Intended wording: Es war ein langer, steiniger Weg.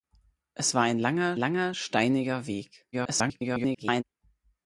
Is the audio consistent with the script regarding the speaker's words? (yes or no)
no